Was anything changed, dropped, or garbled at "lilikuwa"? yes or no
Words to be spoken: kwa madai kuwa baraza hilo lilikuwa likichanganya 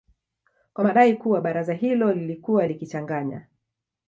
no